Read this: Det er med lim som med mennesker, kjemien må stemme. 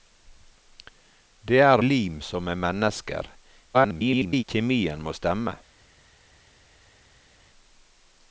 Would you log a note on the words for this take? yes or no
yes